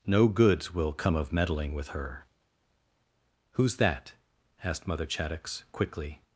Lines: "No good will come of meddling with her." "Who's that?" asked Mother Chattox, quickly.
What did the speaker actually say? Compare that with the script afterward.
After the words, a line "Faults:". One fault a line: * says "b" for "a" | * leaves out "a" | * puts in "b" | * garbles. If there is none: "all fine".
"No goods will come of meddling with her." "Who's that?" asked Mother Chattox, quickly.
Faults:
* says "goods" for "good"